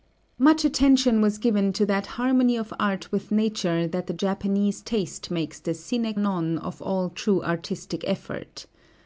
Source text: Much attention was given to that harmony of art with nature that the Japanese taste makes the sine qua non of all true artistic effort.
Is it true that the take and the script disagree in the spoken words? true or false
true